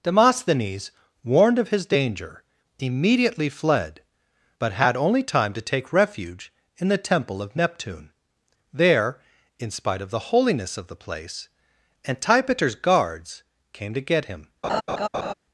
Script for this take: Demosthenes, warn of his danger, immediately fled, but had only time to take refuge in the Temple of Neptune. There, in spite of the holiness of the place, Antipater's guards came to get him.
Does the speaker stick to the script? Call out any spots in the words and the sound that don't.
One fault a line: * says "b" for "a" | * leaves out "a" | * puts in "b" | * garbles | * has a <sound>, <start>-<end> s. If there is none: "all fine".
* says "warned" for "warn"
* has a laugh, 14.6-15.3 s